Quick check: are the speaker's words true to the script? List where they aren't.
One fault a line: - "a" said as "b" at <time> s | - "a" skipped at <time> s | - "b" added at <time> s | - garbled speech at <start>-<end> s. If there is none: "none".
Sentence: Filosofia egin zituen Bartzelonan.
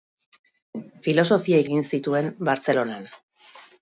none